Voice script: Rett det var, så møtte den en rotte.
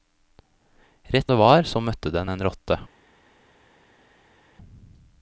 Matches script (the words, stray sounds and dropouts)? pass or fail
pass